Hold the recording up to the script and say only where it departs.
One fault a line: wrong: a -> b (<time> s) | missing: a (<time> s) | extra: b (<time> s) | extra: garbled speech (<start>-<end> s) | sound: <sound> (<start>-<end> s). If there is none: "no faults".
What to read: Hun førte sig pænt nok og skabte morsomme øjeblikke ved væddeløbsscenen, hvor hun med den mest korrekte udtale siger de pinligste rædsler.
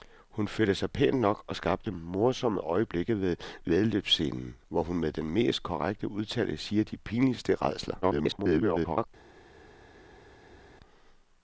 extra: garbled speech (8.0-9.1 s)